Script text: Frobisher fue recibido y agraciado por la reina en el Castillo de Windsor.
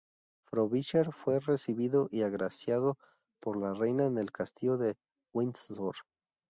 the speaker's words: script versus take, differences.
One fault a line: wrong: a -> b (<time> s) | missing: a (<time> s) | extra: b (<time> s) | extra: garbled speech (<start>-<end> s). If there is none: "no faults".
no faults